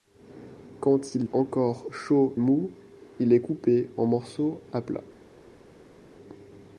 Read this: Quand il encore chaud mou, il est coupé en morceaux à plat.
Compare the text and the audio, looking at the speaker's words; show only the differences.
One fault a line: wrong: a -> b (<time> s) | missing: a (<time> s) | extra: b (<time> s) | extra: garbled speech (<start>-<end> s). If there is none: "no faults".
no faults